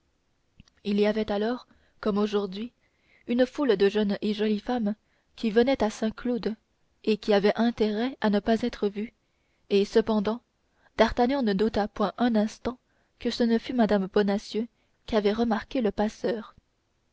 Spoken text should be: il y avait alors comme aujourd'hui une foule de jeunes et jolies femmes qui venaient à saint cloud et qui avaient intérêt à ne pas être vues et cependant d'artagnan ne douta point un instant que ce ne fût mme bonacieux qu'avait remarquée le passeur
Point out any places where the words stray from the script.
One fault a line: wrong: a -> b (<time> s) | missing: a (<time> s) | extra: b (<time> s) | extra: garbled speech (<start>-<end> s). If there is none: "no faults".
no faults